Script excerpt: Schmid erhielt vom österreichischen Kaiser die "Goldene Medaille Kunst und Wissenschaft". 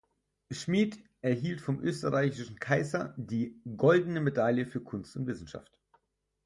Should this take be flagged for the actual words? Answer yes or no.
yes